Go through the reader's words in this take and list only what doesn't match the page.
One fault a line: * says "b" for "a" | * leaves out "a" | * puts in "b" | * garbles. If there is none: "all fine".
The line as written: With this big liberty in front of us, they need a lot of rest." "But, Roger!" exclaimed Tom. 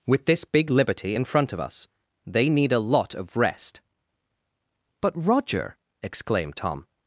all fine